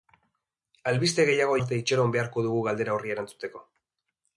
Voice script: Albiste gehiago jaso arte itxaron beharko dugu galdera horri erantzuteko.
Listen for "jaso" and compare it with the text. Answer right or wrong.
wrong